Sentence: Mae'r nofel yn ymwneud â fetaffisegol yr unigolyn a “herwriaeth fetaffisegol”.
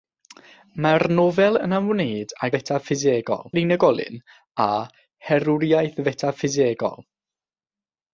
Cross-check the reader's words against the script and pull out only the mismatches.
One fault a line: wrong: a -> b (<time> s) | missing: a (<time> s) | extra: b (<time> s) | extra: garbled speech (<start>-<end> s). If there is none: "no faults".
no faults